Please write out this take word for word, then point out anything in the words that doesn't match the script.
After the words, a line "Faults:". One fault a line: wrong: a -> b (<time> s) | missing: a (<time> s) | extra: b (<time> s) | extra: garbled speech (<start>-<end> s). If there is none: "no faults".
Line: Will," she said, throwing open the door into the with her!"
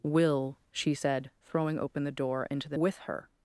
Will," she said, throwing open the door into the with her!"
Faults:
no faults